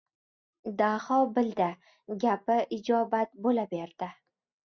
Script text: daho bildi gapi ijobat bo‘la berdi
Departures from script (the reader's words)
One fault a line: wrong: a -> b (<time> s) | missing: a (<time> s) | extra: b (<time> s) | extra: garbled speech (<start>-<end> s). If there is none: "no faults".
no faults